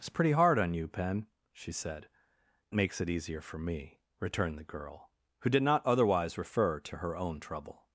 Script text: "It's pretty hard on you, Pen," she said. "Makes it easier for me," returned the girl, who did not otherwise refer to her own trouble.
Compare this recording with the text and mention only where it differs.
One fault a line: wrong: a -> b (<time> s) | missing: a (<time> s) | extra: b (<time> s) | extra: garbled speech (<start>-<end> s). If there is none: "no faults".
no faults